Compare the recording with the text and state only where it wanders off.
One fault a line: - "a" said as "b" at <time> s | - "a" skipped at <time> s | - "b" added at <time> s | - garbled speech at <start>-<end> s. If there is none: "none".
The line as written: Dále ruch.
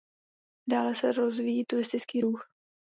- "se rozvíjí turistický" added at 0.9 s